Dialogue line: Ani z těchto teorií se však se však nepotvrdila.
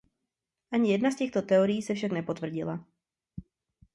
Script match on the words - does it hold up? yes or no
no